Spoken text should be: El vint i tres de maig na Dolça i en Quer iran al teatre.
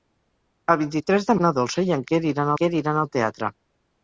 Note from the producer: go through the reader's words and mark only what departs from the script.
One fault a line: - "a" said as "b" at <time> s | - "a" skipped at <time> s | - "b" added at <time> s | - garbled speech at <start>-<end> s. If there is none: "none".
- "maig" skipped at 1.4 s
- "Quer iran" added at 2.6 s